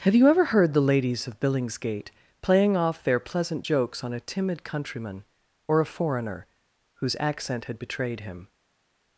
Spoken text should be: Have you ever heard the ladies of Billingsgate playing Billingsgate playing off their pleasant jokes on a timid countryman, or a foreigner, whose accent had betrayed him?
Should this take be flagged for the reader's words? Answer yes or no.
yes